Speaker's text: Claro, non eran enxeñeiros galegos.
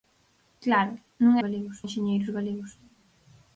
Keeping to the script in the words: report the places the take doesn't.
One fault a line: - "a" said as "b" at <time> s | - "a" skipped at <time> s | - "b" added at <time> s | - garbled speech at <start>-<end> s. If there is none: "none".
- "eran" said as "galegos" at 1.4 s